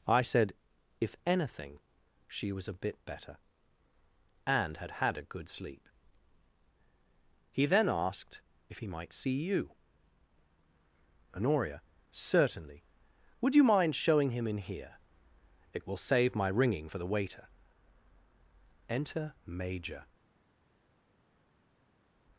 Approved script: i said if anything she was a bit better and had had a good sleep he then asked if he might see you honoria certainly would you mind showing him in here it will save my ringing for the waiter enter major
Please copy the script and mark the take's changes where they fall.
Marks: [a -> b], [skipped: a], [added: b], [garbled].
i said if anything she was a bit better and had had a good sleep he then asked if he might see you honoria certainly would you mind showing him in here it will save my ringing for the waiter enter major